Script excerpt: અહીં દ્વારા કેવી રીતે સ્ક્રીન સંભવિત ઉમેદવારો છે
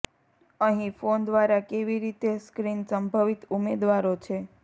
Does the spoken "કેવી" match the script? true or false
true